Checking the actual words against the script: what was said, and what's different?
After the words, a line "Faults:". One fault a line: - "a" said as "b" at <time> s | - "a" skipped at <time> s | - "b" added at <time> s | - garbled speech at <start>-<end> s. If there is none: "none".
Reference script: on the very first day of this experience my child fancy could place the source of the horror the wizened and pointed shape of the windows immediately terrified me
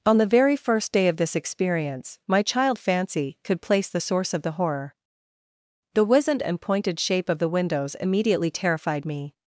on the very first day of this experience my child fancy could place the source of the horror the wizened and pointed shape of the windows immediately terrified me
Faults:
none